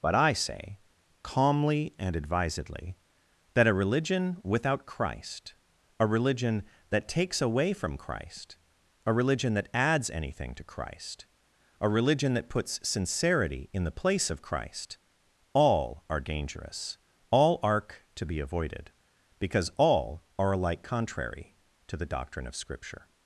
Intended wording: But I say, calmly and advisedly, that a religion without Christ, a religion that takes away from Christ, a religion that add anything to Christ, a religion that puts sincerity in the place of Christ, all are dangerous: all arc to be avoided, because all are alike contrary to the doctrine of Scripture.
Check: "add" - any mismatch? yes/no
yes